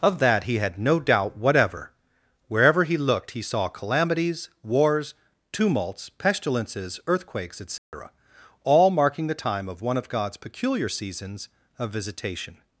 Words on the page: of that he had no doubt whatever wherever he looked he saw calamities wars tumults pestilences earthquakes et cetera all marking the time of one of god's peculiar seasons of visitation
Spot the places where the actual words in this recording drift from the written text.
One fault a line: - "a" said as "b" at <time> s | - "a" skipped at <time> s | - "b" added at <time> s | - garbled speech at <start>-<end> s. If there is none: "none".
none